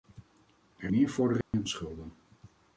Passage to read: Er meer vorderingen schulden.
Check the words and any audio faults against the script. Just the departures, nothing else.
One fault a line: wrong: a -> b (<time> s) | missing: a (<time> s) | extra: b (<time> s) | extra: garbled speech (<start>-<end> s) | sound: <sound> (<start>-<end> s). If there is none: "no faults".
sound: dropout (1.4-1.5 s)